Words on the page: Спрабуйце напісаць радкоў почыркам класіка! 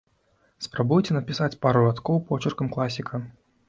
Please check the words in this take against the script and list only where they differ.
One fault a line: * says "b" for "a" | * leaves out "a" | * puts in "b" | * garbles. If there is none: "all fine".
* puts in "пару"